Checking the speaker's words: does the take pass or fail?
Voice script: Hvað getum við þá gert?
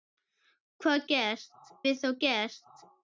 fail